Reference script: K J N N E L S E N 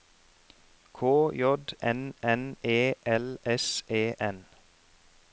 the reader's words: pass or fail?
pass